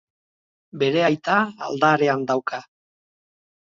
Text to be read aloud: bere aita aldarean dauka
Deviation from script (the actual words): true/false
false